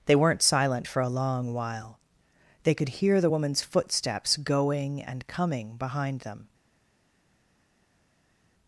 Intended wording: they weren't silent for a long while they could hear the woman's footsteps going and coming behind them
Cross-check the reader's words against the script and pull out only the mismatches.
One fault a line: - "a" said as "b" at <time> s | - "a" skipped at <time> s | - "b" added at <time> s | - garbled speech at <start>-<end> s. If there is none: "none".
none